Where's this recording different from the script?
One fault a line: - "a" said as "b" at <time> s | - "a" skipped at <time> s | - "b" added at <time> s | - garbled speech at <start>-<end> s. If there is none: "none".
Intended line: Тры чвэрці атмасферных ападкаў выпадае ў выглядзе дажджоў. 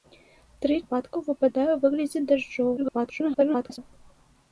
- "чвэрці атмасферных" skipped at 0.8 s
- garbled speech at 2.8-3.8 s